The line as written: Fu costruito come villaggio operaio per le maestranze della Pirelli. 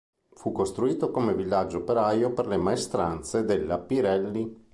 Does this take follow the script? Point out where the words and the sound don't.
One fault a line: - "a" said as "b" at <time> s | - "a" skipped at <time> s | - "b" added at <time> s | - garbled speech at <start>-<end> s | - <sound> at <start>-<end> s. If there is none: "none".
none